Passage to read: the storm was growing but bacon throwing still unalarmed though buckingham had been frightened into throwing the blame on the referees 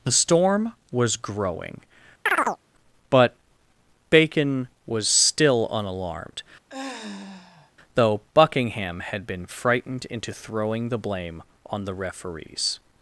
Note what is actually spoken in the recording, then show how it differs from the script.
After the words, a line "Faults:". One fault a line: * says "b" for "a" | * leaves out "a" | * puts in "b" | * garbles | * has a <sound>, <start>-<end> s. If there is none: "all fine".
the storm was growing but bacon was still unalarmed though buckingham had been frightened into throwing the blame on the referees
Faults:
* has a chirp, 2.3-2.6 s
* says "was" for "throwing"
* has a sigh, 6.7-7.7 s